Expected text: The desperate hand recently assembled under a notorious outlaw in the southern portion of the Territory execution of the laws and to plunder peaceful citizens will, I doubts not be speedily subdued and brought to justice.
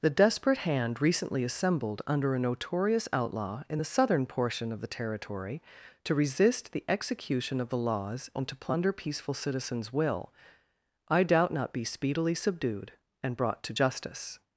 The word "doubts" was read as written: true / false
false